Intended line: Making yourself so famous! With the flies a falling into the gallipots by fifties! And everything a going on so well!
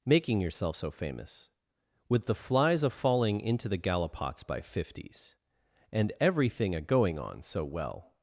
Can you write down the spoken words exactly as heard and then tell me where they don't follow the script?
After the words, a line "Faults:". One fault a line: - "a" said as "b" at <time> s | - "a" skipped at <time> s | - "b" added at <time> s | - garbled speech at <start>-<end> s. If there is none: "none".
Making yourself so famous! With the flies a falling into the gallipots by fifties! And everything a going on so well!
Faults:
none